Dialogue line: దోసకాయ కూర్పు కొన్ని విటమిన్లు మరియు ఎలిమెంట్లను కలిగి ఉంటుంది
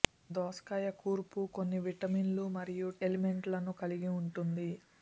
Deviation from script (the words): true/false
false